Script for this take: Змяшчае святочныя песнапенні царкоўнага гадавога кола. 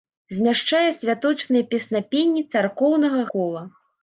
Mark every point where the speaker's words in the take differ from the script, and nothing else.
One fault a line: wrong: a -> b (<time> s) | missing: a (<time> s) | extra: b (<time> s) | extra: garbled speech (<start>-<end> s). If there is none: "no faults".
missing: гадавога (3.2 s)